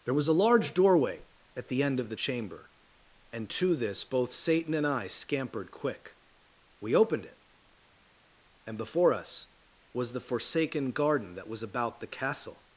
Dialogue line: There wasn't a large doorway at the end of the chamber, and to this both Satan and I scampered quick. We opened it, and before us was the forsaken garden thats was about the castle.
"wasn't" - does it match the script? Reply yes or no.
no